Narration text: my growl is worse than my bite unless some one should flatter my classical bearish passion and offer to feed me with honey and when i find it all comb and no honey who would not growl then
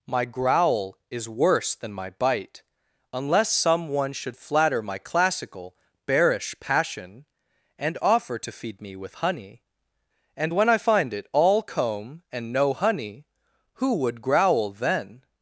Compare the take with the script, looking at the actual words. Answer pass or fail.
fail